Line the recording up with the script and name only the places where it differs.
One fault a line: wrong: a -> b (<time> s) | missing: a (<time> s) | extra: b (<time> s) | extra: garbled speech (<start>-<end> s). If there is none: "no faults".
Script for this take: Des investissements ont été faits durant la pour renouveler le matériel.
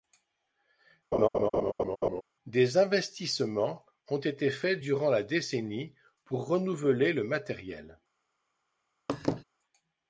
extra: décennie (5.2 s)